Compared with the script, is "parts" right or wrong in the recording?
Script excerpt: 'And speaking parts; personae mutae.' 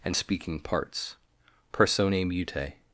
right